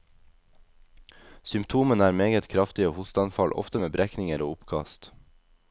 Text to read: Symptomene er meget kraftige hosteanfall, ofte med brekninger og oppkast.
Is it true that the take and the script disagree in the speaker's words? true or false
false